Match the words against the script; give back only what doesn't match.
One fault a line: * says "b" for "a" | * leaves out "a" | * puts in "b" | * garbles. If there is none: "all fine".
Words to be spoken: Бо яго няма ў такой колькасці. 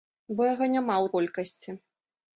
* leaves out "такой"